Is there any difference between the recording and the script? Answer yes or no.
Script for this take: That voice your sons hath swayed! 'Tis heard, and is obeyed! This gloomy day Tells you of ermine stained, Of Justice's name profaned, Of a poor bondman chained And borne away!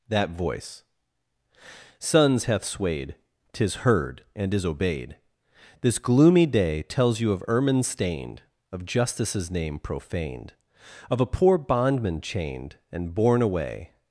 yes